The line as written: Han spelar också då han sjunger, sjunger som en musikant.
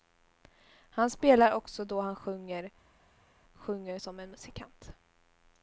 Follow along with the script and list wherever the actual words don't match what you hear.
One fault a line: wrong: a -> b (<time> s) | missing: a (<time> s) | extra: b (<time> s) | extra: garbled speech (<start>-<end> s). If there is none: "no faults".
no faults